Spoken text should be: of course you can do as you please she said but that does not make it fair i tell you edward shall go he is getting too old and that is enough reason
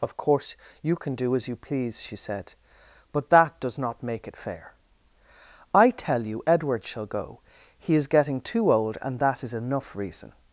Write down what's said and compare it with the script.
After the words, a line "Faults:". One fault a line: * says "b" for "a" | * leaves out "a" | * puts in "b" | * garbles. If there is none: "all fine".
of course you can do as you please she said but that does not make it fair i tell you edward shall go he is getting too old and that is enough reason
Faults:
all fine